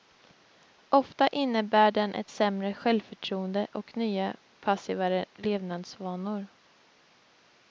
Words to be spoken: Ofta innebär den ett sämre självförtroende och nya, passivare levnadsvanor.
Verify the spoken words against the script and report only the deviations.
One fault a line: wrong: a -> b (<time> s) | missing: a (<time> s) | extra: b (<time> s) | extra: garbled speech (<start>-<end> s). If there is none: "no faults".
no faults